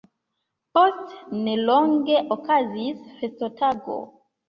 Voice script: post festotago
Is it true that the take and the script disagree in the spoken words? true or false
true